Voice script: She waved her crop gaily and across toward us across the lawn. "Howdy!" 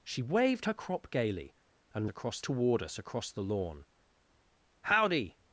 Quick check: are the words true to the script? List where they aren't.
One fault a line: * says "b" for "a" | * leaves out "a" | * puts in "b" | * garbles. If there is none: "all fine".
all fine